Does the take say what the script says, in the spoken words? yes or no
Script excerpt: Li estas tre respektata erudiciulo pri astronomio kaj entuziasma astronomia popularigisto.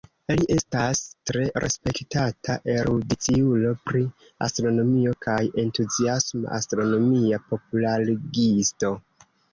yes